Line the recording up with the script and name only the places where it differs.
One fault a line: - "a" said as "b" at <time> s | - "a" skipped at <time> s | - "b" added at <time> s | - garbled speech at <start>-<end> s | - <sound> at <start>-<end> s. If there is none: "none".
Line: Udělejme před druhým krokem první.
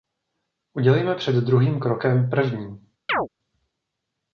- chirp at 3.1-3.3 s